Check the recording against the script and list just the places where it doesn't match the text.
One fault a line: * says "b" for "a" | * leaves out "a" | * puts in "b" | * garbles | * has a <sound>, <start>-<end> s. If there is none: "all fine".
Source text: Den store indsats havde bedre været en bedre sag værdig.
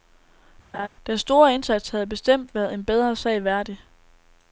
* has a laugh, 0.7-0.9 s
* says "bestemt" for "bedre"